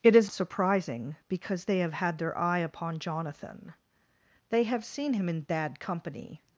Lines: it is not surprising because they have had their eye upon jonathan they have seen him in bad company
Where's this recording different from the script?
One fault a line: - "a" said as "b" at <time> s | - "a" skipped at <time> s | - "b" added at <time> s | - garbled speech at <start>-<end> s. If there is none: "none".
- "not" skipped at 0.3 s